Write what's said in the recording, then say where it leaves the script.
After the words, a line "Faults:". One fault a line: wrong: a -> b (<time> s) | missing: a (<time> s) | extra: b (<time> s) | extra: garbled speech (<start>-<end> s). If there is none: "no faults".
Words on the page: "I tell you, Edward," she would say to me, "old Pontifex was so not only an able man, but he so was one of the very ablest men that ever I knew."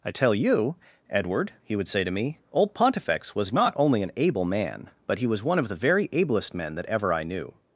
"I tell you, Edward," he would say to me, "old Pontifex was not only an able man, but he was one of the very ablest men that ever I knew."
Faults:
wrong: she -> he (1.6 s)
missing: so (3.5 s)
missing: so (5.3 s)